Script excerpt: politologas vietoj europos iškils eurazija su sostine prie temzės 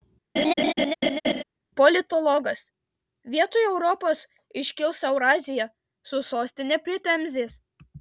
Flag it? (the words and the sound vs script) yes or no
yes